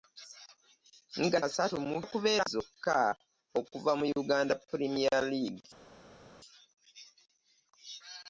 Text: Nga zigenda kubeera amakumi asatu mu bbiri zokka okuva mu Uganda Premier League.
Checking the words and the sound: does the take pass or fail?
fail